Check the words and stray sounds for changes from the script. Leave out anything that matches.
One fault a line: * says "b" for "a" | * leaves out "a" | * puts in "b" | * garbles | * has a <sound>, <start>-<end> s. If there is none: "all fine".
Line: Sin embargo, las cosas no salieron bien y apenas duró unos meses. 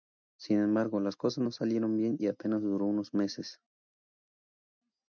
all fine